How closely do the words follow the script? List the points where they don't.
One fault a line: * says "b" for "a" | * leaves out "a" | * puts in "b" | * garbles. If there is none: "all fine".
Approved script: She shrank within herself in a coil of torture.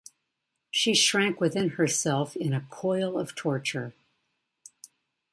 all fine